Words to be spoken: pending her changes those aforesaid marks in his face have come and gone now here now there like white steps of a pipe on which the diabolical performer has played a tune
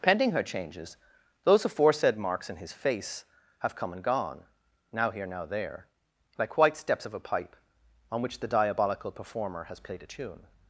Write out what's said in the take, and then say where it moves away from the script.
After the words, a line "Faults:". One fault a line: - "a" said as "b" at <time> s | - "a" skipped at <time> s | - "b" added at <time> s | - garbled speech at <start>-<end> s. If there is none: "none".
pending her changes those aforesaid marks in his face have come and gone now here now there like white steps of a pipe on which the diabolical performer has played a tune
Faults:
none